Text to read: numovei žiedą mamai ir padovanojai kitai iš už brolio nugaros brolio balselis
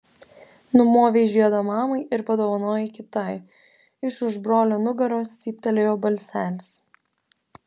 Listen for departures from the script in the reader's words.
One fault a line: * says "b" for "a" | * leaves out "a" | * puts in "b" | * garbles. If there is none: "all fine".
* says "cyptelėjo" for "brolio"